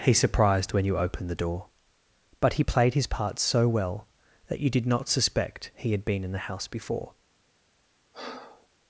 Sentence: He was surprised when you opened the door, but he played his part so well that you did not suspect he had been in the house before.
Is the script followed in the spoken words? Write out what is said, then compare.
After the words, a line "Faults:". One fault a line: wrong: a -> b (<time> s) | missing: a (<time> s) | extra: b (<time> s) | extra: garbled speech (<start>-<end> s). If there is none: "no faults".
He surprised when you opened the door, but he played his part so well that you did not suspect he had been in the house before.
Faults:
missing: was (0.1 s)